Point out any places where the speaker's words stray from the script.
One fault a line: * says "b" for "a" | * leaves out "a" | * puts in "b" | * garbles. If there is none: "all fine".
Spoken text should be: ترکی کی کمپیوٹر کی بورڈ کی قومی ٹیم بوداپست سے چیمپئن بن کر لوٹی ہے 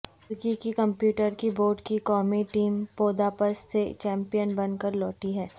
all fine